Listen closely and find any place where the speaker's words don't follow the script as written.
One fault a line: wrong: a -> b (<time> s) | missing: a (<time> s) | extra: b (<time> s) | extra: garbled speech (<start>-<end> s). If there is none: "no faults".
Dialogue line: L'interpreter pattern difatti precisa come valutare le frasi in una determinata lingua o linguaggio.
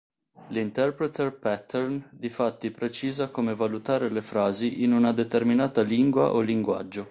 no faults